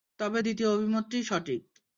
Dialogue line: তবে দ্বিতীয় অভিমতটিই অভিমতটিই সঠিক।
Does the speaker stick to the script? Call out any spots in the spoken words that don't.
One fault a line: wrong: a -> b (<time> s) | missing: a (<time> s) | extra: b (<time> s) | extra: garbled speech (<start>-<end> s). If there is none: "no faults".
missing: অভিমতটিই (1.2 s)